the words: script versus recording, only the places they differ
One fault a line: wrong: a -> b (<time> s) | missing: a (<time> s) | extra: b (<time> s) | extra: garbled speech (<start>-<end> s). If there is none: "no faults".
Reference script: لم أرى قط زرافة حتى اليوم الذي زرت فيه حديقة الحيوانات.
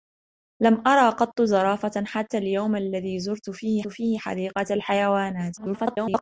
extra: فيه (3.9 s)
extra: garbled speech (5.6-6.2 s)